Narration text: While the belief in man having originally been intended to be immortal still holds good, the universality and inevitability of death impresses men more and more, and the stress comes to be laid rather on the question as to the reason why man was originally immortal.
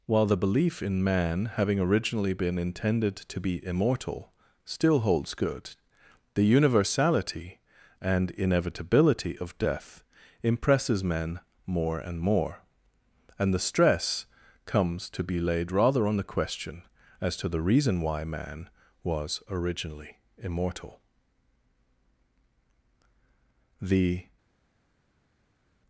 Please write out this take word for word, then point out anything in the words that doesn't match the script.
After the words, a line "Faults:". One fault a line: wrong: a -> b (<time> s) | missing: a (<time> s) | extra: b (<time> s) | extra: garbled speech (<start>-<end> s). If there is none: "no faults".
While the belief in man having originally been intended to be immortal still holds good, the universality and inevitability of death impresses men more and more, and the stress comes to be laid rather on the question as to the reason why man was originally immortal. The
Faults:
extra: The (23.8 s)